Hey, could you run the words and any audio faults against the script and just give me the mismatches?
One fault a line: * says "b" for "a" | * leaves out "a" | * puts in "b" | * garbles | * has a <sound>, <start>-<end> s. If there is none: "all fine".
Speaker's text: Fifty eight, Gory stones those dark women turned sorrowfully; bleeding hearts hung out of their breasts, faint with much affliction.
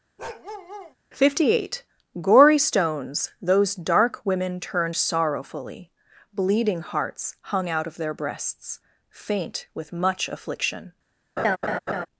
* has a bark, 0.2-1.0 s
* has a laugh, 11.4-12.1 s